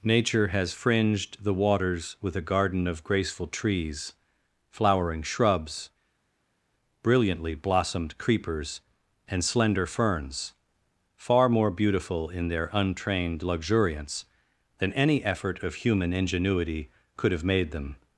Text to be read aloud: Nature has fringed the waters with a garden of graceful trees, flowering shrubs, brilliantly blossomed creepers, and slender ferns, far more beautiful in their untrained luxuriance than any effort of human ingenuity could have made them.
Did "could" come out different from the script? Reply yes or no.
no